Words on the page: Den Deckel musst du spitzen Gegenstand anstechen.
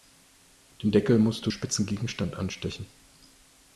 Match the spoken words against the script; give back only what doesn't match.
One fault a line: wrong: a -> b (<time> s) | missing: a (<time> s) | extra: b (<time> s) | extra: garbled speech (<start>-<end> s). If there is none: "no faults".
no faults